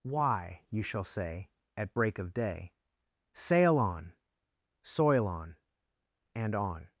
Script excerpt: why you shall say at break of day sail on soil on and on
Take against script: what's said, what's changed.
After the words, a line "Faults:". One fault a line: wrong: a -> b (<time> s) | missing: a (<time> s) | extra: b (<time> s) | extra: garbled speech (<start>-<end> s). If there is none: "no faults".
why you shall say at break of day sail on soil on and on
Faults:
no faults